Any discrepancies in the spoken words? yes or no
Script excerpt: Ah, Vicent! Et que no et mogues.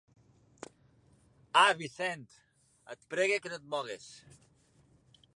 yes